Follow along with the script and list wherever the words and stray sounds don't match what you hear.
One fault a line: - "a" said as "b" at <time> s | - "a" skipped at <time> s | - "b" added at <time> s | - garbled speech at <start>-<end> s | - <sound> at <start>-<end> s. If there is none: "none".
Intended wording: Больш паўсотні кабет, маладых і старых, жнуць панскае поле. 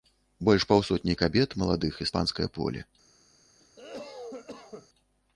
- "старых жнуць" skipped at 2.1 s
- cough at 3.6-4.9 s